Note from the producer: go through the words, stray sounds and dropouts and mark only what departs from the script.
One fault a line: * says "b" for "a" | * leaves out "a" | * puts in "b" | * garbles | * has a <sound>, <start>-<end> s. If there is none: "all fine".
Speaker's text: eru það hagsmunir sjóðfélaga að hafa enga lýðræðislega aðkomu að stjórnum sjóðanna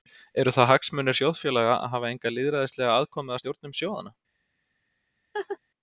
* has a laugh, 5.3-5.6 s